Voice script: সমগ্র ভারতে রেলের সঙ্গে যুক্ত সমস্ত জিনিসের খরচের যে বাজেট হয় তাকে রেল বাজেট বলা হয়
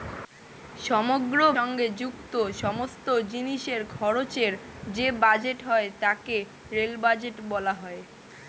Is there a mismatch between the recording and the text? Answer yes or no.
yes